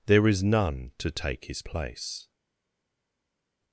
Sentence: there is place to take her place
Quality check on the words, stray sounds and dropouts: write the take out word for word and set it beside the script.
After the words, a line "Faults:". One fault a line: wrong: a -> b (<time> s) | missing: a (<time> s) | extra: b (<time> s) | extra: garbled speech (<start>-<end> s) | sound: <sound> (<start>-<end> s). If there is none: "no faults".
there is none to take his place
Faults:
wrong: place -> none (0.4 s)
wrong: her -> his (1.4 s)